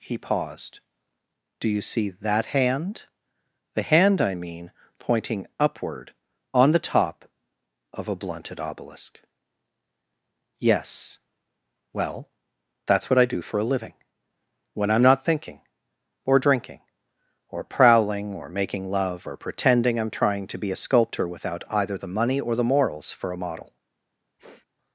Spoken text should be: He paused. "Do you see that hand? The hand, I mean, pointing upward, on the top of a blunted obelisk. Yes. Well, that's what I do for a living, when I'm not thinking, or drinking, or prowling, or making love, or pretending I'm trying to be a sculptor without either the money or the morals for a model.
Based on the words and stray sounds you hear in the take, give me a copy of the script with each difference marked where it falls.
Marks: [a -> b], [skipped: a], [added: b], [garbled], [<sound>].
He paused. "Do you see that hand? The hand, I mean, pointing upward, on the top of a blunted obelisk. Yes. Well, that's what I do for a living, when I'm not thinking, or drinking, or prowling, or making love, or pretending I'm trying to be a sculptor without either the money or the morals for a model. [sniff]